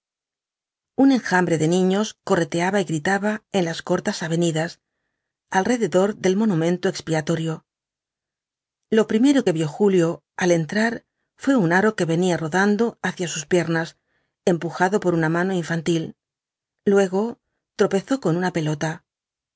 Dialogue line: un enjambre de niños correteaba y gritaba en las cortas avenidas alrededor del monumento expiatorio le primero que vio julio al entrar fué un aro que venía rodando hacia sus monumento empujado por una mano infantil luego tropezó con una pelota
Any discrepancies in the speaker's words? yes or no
yes